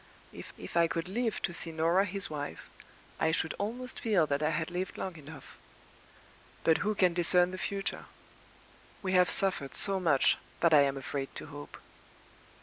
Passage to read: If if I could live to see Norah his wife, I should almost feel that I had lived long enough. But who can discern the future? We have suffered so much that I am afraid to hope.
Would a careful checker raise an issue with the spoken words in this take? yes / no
no